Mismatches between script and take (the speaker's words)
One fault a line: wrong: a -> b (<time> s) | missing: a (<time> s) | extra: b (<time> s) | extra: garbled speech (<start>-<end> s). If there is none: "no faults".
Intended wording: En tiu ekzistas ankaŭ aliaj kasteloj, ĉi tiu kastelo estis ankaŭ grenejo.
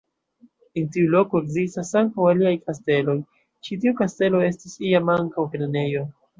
extra: loko (1.1 s)
extra: iam (4.9 s)